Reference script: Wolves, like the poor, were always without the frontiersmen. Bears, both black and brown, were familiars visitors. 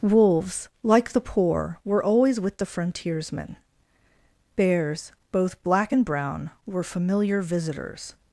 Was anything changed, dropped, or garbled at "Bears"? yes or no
no